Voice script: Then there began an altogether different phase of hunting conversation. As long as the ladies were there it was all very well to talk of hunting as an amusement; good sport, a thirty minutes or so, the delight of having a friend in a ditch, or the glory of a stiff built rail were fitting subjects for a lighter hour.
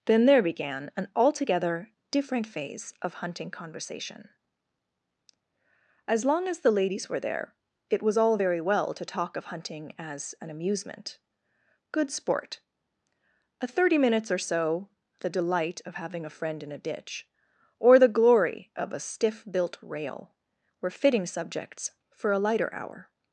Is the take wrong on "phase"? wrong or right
right